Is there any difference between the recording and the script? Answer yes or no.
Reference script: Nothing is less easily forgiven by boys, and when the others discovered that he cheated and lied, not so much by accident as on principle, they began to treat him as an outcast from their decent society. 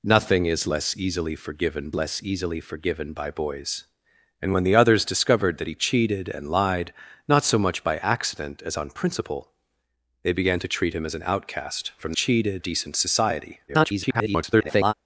yes